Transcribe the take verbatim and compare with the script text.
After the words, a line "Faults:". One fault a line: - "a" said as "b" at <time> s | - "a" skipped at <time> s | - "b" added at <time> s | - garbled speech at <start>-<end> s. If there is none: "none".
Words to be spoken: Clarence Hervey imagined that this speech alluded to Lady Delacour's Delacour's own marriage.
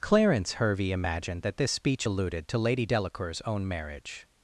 Clarence Hervey imagined that this speech alluded to Lady Delacour's own marriage.
Faults:
- "Delacour's" skipped at 3.4 s